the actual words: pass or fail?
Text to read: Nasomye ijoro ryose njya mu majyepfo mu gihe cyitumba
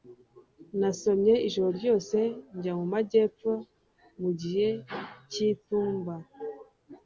pass